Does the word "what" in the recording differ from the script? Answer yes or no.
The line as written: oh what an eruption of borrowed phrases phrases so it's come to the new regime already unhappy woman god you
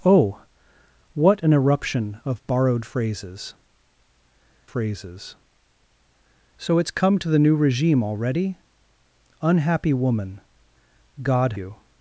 no